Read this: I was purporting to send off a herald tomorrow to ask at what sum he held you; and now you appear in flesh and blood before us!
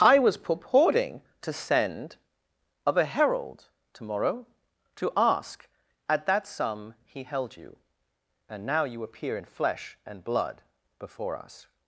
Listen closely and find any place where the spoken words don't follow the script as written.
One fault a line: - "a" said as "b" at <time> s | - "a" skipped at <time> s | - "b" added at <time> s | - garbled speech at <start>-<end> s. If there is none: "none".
- "off" said as "of" at 2.9 s
- "what" said as "that" at 6.2 s